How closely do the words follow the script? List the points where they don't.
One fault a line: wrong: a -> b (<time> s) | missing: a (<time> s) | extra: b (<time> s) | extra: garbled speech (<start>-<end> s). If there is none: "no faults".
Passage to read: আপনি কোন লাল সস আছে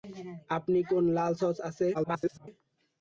extra: garbled speech (1.9-2.5 s)